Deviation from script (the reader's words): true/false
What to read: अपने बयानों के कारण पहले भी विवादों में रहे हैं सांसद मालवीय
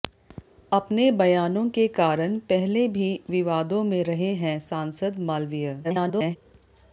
true